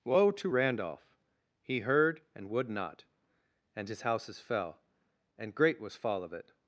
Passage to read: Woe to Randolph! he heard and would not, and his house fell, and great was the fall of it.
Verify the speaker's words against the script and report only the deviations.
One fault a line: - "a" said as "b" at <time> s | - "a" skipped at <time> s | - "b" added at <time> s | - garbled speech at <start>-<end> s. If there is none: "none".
- "house" said as "houses" at 4.0 s
- "the" skipped at 6.0 s